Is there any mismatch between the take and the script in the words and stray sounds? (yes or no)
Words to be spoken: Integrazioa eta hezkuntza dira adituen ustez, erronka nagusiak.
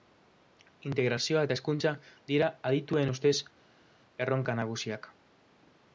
no